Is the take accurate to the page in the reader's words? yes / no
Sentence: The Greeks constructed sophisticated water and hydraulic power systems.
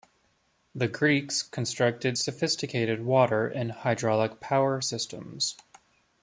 yes